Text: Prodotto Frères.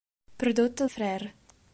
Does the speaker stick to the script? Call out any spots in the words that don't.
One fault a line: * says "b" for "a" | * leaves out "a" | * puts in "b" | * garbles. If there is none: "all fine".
all fine